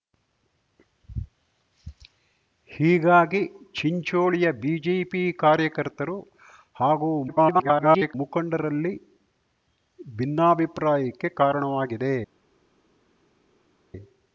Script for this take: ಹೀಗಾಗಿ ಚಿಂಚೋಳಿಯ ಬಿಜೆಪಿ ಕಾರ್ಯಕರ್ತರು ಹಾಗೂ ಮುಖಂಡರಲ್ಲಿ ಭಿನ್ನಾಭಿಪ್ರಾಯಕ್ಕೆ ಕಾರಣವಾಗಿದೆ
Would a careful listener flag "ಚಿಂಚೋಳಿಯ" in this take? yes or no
no